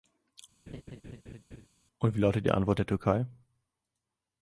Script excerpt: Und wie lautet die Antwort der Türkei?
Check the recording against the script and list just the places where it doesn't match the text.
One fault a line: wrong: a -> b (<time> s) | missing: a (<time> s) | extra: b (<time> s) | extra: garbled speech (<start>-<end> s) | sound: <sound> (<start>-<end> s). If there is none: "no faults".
sound: laugh (0.7-1.7 s)